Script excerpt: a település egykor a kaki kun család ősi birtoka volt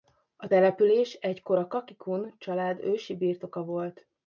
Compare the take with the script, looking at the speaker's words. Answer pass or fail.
pass